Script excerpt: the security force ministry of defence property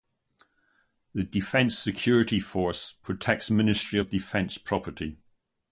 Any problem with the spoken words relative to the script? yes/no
yes